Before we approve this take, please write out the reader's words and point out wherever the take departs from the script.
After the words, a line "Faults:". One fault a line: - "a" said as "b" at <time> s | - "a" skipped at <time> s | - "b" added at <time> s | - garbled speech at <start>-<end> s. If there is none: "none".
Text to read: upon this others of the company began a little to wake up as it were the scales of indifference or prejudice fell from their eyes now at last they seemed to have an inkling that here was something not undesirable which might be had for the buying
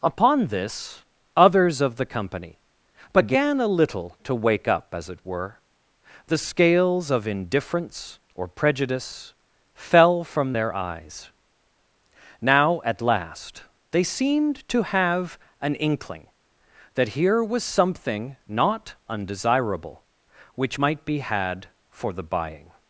upon this others of the company began a little to wake up as it were the scales of indifference or prejudice fell from their eyes now at last they seemed to have an inkling that here was something not undesirable which might be had for the buying
Faults:
none